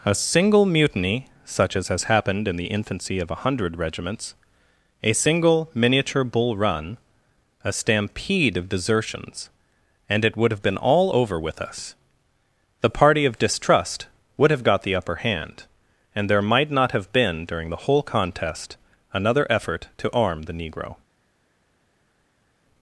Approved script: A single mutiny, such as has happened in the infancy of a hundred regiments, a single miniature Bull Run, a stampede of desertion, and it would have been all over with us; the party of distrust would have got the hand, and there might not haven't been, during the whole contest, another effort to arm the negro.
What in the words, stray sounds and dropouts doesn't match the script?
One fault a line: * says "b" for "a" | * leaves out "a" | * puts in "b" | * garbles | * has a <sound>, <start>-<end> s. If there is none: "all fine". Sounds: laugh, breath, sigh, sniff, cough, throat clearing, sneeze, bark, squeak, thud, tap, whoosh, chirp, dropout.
* says "desertions" for "desertion"
* puts in "upper"
* says "have" for "haven't"